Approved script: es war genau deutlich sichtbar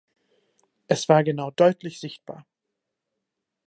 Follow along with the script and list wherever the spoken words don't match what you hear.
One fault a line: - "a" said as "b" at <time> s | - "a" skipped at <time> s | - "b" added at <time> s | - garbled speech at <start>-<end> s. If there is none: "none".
none